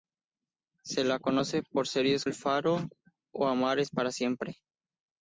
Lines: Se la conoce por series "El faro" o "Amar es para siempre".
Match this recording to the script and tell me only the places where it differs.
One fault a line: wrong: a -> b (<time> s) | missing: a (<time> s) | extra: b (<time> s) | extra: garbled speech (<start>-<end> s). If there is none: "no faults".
no faults